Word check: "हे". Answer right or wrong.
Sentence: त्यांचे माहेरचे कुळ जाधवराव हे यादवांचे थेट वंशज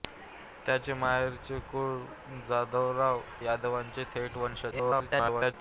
wrong